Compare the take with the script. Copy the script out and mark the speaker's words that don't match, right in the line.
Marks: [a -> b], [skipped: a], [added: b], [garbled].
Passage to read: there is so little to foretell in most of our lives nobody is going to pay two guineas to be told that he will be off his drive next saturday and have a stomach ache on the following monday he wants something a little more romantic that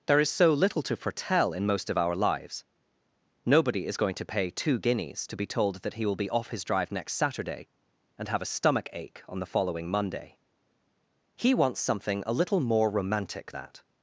there is so little to foretell in most of our lives nobody is going to pay two guineas to be told that he will be off his drive next saturday and have a stomach ache on the following monday he wants something a little more romantic that